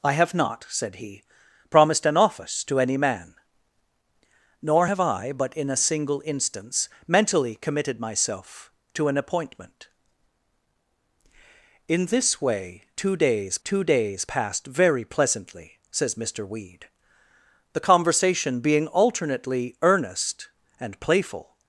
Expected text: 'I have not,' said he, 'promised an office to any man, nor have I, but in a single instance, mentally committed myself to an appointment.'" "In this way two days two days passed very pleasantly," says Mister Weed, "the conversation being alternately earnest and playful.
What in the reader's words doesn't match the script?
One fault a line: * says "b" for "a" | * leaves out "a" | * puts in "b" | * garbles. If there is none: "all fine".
all fine